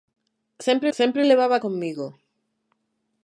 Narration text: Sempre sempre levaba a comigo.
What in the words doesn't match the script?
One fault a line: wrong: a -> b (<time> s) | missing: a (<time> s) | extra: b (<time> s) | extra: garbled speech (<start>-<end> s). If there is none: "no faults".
no faults